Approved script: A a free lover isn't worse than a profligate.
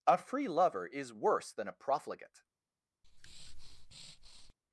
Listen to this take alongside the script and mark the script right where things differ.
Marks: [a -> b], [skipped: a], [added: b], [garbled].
A [skipped: a] free lover [isn't -> is] worse than a profligate.